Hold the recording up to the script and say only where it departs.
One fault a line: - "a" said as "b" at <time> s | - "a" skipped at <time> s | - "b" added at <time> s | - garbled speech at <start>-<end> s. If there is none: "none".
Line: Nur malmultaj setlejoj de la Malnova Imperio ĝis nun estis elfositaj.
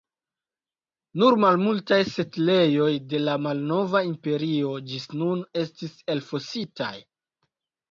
none